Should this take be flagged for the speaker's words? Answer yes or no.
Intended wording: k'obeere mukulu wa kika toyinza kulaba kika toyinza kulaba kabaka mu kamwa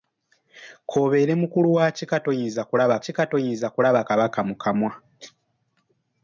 no